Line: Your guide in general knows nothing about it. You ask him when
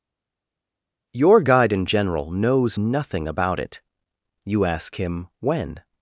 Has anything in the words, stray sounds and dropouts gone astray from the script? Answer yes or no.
no